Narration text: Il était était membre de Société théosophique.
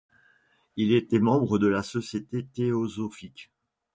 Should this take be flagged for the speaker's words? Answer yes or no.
yes